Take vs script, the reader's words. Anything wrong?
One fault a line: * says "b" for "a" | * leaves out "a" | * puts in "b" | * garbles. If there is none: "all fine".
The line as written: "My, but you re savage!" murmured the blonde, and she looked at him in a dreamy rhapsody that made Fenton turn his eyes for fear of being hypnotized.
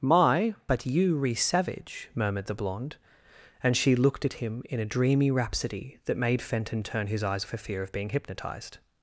all fine